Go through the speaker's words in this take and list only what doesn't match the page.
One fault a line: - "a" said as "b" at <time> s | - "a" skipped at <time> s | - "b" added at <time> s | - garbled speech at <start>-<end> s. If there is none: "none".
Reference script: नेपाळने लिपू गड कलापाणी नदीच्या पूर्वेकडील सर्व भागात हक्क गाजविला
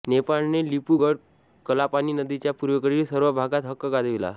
none